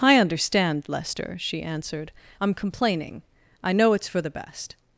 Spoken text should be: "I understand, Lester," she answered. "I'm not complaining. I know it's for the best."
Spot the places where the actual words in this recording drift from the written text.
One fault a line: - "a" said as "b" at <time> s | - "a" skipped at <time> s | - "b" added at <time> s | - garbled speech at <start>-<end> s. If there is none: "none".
- "not" skipped at 2.5 s